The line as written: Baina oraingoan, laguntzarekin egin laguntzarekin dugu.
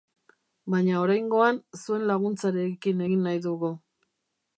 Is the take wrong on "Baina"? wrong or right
right